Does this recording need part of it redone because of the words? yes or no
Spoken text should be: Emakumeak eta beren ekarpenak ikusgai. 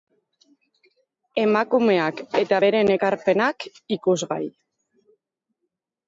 no